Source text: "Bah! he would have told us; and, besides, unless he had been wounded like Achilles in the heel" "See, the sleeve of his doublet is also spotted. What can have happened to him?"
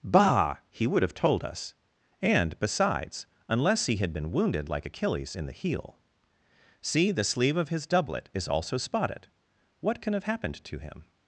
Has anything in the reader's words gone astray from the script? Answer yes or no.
no